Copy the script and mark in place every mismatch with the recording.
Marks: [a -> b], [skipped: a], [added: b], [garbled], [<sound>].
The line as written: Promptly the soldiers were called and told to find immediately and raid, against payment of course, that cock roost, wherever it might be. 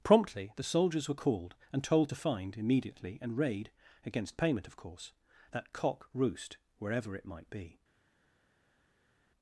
Promptly the soldiers were called and told to find immediately and raid, against payment of course, that cock roost, wherever it might be.